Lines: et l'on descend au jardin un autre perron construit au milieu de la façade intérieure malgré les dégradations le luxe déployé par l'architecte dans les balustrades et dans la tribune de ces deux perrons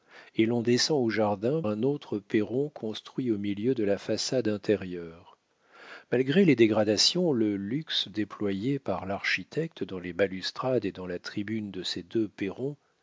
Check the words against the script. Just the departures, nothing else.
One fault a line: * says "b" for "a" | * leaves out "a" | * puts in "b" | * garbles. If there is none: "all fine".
all fine